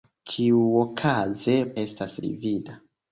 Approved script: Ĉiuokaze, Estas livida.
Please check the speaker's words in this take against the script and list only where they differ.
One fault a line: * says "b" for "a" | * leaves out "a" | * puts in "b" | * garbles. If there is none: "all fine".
all fine